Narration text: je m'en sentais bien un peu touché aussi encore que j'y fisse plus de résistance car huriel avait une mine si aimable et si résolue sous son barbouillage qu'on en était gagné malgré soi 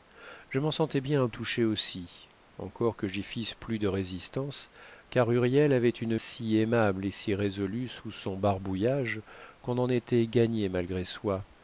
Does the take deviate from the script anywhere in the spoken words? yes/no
yes